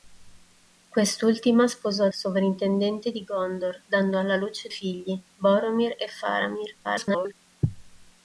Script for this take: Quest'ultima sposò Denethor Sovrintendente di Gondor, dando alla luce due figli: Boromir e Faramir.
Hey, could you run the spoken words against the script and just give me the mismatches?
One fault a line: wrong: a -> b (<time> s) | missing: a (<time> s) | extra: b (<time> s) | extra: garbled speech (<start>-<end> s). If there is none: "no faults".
missing: Denethor (2.1 s)
missing: due (4.7 s)
extra: garbled speech (6.8-7.3 s)